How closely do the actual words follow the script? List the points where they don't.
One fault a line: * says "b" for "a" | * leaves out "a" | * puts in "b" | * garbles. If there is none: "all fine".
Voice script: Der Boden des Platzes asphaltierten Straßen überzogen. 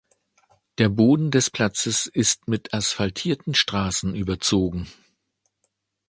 * puts in "ist mit"